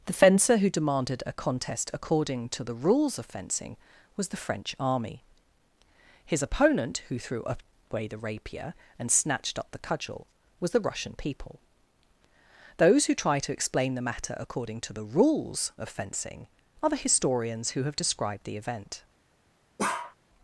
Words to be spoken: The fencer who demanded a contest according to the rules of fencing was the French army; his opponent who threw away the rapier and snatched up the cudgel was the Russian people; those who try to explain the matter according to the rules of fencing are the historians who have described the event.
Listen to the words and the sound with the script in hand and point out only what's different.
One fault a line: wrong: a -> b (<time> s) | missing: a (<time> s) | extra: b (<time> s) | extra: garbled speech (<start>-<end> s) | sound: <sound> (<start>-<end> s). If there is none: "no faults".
sound: bark (19.8-20.2 s)